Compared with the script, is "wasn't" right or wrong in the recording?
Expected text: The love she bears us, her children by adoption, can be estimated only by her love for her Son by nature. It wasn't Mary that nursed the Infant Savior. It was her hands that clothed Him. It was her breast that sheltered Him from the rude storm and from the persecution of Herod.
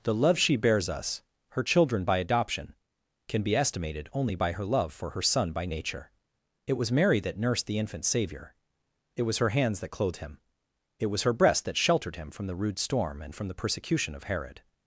wrong